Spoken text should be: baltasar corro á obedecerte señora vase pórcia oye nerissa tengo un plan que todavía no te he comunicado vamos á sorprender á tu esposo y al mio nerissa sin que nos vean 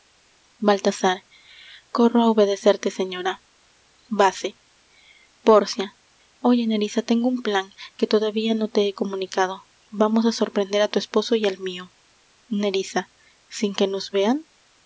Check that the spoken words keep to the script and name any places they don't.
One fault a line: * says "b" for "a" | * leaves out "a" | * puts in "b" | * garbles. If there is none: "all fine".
all fine